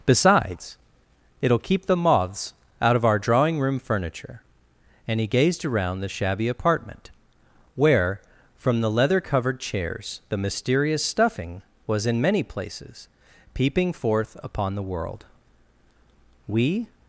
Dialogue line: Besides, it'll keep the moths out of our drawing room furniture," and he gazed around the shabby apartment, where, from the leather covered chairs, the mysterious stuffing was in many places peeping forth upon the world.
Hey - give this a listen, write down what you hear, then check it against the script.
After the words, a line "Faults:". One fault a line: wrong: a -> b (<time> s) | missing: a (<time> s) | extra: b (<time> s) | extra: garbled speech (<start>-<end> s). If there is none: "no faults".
Besides, it'll keep the moths out of our drawing room furniture," and he gazed around the shabby apartment, where, from the leather covered chairs, the mysterious stuffing was in many places peeping forth upon the world. We
Faults:
extra: We (16.4 s)